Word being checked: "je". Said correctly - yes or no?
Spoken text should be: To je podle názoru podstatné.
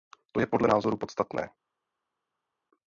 yes